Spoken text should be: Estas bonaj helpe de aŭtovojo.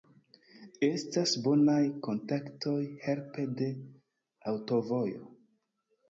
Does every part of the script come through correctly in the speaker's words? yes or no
no